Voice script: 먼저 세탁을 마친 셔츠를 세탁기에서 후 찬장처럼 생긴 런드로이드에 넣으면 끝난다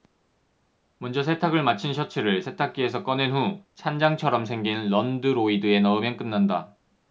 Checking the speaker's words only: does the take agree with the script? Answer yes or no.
no